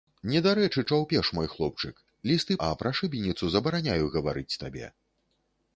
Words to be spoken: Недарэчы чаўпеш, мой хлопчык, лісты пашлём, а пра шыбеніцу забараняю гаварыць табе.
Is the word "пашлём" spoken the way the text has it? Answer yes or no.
no